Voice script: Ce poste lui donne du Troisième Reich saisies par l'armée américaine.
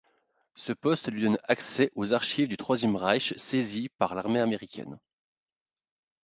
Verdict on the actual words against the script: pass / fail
fail